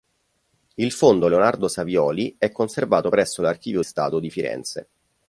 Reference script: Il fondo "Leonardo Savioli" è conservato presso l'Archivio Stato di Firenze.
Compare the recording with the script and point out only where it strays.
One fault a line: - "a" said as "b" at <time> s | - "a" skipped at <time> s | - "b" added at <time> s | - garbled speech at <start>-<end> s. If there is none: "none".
none